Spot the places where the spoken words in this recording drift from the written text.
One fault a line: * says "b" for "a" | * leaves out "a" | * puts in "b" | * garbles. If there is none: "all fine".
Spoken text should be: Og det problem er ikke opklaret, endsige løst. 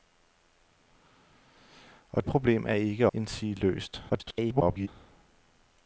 * leaves out "det"
* leaves out "opklaret"
* garbles